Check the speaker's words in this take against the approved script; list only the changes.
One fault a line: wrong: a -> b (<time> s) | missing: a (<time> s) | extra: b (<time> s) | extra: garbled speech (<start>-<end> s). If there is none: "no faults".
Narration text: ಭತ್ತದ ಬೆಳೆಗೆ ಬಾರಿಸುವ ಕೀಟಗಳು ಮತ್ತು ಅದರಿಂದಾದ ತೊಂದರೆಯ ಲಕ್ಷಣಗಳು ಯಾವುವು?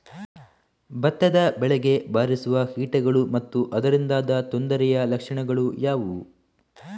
no faults